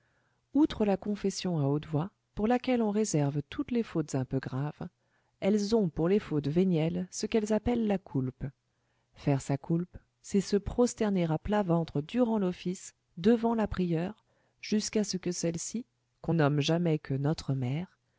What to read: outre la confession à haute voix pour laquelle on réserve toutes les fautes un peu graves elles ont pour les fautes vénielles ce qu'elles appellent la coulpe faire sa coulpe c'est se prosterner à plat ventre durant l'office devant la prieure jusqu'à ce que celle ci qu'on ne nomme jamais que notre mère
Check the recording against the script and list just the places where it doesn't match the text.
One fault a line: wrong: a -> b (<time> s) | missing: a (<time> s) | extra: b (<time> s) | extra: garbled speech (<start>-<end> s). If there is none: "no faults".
missing: ne (16.3 s)